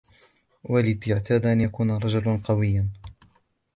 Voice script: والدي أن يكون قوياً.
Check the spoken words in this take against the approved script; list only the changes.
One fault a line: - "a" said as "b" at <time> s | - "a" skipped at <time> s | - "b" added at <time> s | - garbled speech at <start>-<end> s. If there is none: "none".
- "اعتاد" added at 1.1 s
- "رجلاً" added at 1.9 s